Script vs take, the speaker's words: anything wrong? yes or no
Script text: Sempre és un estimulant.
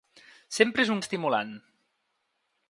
no